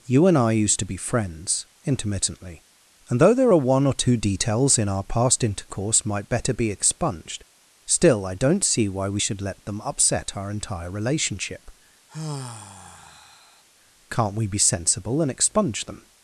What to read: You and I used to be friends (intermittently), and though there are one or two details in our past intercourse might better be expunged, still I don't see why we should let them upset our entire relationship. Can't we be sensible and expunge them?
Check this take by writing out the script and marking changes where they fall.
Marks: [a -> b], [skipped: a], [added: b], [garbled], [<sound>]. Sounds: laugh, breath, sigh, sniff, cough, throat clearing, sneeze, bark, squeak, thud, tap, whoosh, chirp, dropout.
You and I used to be friends (intermittently), and though there are one or two details in our past intercourse might better be expunged, still I don't see why we should let them upset our entire relationship. [sigh] Can't we be sensible and expunge them?